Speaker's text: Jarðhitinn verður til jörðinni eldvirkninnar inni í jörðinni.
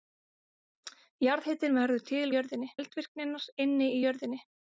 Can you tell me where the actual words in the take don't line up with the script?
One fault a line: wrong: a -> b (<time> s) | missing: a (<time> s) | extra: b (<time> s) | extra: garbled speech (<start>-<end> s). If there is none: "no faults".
no faults